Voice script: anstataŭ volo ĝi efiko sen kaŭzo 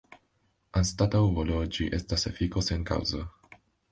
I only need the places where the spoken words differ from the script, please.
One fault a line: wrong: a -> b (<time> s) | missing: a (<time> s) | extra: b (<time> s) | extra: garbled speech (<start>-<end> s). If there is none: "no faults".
extra: estas (2.0 s)